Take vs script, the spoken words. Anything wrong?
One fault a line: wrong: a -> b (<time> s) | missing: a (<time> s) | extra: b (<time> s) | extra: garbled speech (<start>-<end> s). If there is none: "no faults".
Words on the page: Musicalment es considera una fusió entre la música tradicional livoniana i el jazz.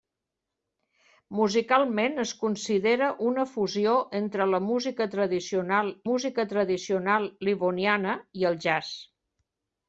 extra: música tradicional (6.1 s)